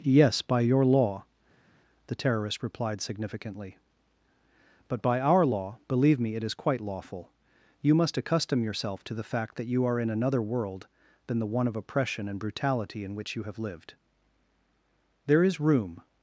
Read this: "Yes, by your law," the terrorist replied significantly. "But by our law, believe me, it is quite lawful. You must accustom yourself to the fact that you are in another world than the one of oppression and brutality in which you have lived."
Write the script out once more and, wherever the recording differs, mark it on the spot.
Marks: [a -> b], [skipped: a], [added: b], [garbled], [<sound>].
"Yes, by your law," the terrorist replied significantly. "But by our law, believe me, it is quite lawful. You must accustom yourself to the fact that you are in another world than the one of oppression and brutality in which you have lived." [added: There is room]